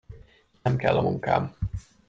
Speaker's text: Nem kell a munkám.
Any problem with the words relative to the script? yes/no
no